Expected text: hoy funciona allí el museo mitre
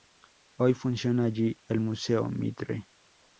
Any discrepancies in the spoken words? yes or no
no